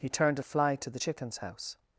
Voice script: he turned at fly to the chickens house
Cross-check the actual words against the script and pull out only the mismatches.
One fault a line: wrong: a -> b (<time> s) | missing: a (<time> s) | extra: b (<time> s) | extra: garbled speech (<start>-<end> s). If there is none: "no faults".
no faults